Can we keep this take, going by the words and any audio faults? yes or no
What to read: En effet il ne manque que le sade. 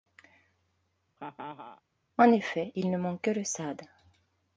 no